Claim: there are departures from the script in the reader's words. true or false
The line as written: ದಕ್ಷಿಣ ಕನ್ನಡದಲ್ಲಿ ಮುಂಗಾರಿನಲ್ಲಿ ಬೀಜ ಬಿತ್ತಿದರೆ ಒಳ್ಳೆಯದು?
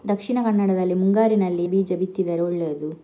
false